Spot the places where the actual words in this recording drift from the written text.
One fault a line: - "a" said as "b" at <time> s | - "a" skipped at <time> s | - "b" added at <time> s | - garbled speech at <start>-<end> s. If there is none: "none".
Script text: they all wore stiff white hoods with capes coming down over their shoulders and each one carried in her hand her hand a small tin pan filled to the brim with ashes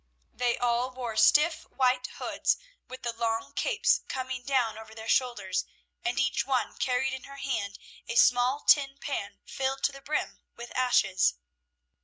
- "the long" added at 3.0 s
- "her hand" skipped at 7.8 s